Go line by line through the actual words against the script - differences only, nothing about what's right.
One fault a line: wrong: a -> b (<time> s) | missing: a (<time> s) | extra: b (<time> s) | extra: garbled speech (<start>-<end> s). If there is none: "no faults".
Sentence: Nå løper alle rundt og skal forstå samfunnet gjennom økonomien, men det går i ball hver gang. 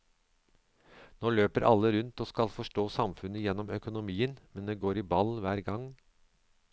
no faults